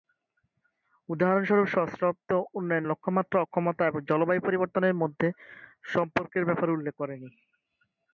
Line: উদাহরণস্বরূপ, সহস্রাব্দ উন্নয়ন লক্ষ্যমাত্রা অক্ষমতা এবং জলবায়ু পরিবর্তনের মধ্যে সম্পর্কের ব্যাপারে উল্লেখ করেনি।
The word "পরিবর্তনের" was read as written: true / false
true